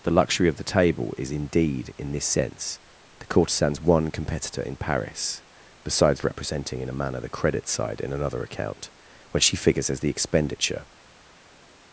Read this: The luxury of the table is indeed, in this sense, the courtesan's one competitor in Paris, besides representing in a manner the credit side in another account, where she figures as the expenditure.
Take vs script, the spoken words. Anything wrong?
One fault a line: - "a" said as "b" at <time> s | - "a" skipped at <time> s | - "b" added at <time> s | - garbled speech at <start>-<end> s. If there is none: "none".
- "where" said as "when" at 9.3 s